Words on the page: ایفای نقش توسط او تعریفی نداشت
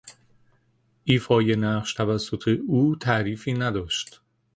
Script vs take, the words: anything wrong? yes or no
no